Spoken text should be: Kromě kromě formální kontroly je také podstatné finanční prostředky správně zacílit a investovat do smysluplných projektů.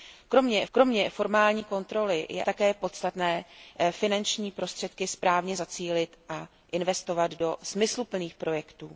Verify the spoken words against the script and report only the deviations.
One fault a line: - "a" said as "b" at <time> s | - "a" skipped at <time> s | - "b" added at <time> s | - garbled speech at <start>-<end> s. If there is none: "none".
none